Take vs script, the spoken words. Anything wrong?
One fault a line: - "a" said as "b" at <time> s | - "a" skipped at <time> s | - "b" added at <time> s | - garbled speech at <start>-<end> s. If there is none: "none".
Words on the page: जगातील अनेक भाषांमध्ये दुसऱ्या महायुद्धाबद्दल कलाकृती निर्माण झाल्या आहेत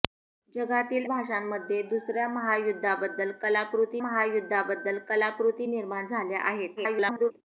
- "अनेक" skipped at 1.1 s
- "महायुद्धाबद्दल कलाकृती" added at 4.0 s
- garbled speech at 6.8-7.3 s